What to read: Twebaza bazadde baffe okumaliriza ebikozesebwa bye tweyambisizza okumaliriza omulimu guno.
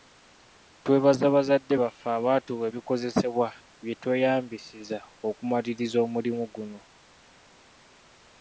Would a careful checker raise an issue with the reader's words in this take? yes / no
yes